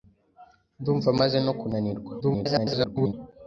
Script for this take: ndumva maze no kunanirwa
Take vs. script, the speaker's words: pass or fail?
fail